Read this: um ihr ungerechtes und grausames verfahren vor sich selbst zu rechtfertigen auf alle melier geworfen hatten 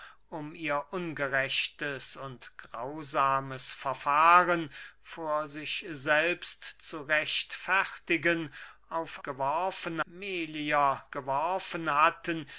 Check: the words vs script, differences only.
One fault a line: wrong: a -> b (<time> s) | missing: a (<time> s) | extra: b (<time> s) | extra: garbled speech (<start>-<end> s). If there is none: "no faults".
wrong: alle -> geworfen (9.2 s)